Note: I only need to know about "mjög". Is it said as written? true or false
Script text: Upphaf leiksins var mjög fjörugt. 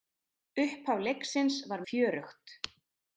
false